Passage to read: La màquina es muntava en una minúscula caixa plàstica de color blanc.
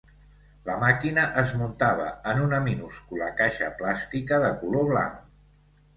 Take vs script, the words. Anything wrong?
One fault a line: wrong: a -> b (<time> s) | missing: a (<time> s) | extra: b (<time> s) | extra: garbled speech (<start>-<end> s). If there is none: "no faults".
no faults